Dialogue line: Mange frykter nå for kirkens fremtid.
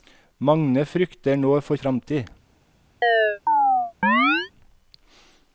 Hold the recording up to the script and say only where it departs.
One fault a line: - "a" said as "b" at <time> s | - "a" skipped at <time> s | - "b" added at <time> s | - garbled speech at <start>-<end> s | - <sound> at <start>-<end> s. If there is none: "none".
- "kirkens" skipped at 1.8 s
- chirp at 3.0-4.5 s